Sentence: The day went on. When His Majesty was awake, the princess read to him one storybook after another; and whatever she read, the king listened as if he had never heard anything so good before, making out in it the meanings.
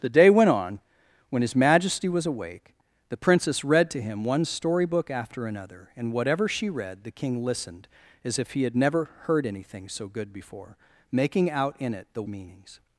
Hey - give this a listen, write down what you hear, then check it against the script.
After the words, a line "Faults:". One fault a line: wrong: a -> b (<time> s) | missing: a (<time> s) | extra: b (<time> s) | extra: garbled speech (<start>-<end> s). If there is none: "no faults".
The day went on. When His Majesty was awake, the princess read to him one storybook after another; and whatever she read, the king listened as if he had never heard anything so good before, making out in it the meanings.
Faults:
no faults